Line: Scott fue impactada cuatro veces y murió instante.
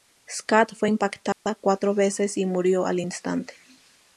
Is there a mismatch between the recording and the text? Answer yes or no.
yes